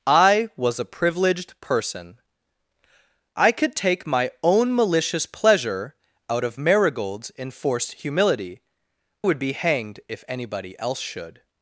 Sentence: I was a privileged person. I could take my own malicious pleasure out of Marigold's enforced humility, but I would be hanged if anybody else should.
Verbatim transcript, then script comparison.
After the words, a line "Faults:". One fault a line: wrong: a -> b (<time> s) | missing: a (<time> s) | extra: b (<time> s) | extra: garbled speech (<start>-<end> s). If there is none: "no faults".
I was a privileged person. I could take my own malicious pleasure out of Marigold's enforced humility, would be hanged if anybody else should.
Faults:
missing: but I (8.6 s)